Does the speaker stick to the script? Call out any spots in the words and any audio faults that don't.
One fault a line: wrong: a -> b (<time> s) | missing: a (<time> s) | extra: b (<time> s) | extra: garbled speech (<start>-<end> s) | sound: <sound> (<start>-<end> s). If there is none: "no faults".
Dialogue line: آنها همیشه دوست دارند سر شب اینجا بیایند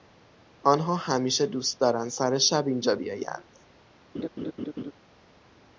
sound: laugh (4.1-4.9 s)